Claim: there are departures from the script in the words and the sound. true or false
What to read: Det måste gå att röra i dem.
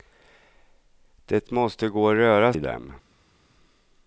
false